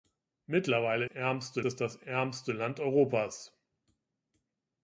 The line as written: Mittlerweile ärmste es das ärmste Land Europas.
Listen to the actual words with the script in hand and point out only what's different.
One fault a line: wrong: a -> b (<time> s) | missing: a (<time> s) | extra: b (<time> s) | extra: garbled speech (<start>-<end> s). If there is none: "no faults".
no faults